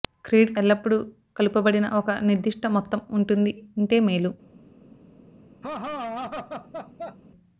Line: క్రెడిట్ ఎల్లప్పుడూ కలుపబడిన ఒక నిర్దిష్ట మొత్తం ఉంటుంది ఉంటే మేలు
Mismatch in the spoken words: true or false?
false